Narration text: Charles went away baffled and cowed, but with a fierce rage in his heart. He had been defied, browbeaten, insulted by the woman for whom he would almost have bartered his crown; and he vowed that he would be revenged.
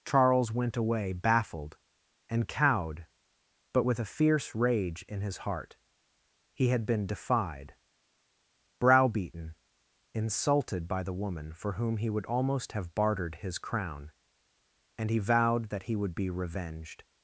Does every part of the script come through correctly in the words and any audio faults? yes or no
yes